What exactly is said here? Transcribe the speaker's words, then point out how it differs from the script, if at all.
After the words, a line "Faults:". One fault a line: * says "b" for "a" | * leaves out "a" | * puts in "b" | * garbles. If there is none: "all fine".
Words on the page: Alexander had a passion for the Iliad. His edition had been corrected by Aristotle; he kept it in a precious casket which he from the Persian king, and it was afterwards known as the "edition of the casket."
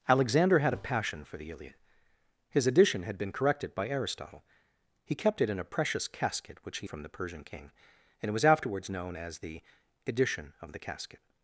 Alexander had a passion for the Iliad. His edition had been corrected by Aristotle; he kept it in a precious casket which he from the Persian king, and it was afterwards known as the "edition of the casket."
Faults:
all fine